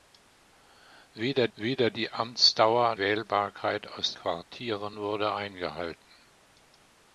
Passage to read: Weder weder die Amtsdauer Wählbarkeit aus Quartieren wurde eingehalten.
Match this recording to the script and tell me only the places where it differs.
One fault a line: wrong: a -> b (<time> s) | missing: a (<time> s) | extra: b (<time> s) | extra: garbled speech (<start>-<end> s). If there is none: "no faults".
no faults